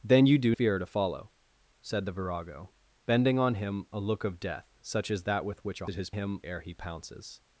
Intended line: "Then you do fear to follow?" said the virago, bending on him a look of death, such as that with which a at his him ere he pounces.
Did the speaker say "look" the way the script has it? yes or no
yes